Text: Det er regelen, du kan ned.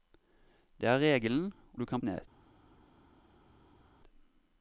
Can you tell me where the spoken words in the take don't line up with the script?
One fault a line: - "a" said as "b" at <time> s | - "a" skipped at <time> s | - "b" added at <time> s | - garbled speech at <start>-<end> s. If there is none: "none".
none